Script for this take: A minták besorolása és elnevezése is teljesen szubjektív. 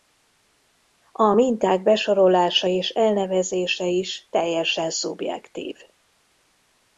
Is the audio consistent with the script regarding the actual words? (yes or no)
yes